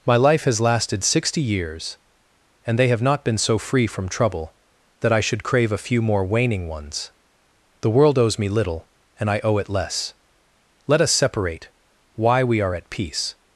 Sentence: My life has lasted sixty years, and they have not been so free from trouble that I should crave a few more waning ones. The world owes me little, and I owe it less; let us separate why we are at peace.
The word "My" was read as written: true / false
true